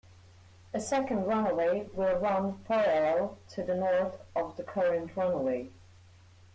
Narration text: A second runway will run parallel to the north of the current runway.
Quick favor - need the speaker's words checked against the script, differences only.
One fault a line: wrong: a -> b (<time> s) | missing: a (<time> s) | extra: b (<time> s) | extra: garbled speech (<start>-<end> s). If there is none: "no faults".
no faults